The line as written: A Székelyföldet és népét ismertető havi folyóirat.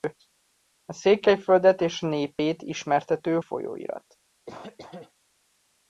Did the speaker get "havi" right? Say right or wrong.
wrong